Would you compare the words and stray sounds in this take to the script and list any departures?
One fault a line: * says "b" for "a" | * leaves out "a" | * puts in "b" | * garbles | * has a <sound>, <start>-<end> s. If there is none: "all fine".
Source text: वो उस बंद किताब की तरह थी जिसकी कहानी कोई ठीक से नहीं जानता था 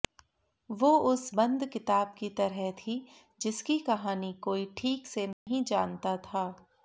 * has a dropout, 5.3-5.5 s